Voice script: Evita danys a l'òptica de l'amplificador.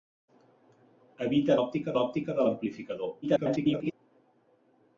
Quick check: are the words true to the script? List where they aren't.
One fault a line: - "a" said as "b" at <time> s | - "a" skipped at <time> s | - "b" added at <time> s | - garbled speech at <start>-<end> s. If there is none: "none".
- "danys" said as "l'òptica" at 1.6 s
- garbled speech at 3.2-3.9 s